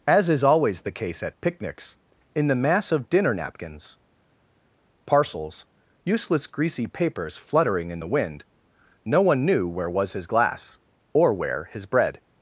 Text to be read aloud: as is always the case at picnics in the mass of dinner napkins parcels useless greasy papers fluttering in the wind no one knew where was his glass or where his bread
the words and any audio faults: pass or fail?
pass